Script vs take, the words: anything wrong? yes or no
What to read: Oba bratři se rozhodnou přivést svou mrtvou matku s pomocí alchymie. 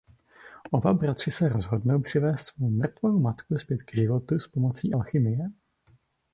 yes